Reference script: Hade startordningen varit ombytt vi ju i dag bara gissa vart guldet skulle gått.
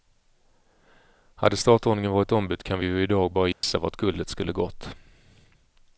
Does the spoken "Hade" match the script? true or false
true